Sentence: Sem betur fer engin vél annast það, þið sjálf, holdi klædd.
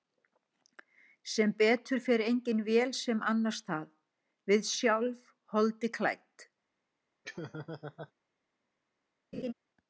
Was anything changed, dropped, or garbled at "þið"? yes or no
yes